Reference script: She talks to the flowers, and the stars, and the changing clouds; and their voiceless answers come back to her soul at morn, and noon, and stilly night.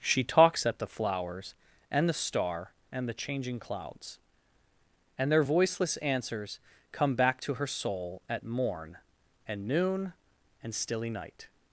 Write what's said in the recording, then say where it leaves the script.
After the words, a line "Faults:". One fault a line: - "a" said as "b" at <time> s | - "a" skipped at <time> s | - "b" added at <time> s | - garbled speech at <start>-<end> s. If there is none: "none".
She talks at the flowers, and the star, and the changing clouds; and their voiceless answers come back to her soul at morn, and noon, and stilly night.
Faults:
- "to" said as "at" at 0.7 s
- "stars" said as "star" at 2.1 s